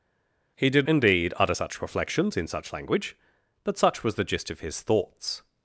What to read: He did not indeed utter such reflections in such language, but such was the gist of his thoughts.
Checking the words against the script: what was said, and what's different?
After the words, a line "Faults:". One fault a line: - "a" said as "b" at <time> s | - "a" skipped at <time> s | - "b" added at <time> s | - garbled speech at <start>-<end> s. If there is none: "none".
He did indeed utter such reflections in such language, but such was the gist of his thoughts.
Faults:
- "not" skipped at 0.9 s